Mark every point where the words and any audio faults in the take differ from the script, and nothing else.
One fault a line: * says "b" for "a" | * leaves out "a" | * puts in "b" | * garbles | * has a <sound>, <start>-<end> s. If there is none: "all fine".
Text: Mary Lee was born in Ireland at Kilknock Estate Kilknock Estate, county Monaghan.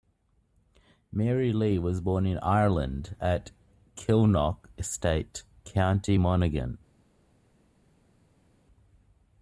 * leaves out "Kilknock Estate"